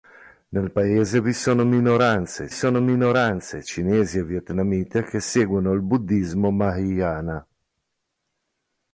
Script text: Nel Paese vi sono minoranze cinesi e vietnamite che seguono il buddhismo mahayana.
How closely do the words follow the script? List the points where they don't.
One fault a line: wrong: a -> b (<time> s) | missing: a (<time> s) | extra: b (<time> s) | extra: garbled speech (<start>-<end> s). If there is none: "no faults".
extra: sono minoranze (2.5 s)